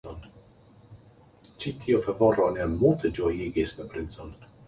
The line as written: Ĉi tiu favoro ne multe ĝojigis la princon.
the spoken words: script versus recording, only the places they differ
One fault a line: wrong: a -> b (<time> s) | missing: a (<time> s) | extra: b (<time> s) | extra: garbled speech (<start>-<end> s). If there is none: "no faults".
no faults